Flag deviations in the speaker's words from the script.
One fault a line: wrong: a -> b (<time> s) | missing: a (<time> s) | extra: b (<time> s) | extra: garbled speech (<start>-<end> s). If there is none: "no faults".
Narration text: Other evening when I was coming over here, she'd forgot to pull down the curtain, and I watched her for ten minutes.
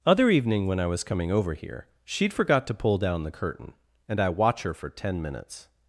wrong: watched -> watch (4.3 s)